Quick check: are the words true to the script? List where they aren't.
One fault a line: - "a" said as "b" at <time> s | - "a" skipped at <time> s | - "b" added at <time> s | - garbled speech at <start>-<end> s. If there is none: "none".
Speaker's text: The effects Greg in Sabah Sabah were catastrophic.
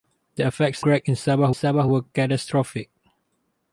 none